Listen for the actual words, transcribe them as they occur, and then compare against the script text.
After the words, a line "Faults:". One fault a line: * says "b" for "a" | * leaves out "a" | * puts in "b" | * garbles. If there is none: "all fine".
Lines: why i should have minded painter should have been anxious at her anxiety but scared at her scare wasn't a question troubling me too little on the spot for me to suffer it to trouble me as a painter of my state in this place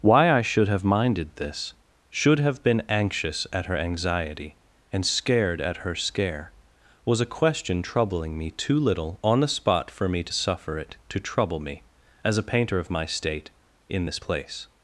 why i should have minded this should have been anxious at her anxiety and scared at her scare was a question troubling me too little on the spot for me to suffer it to trouble me as a painter of my state in this place
Faults:
* says "this" for "painter"
* says "and" for "but"
* says "was" for "wasn't"